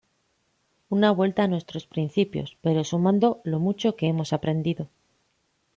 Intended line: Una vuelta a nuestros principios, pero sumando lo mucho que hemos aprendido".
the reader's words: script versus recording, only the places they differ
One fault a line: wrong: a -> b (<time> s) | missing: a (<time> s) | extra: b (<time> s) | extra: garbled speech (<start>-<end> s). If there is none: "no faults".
no faults